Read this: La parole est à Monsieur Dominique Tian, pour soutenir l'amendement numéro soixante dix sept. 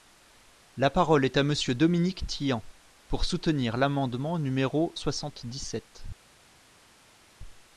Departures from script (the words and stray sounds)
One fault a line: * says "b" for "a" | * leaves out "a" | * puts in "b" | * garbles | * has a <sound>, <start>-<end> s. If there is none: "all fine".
all fine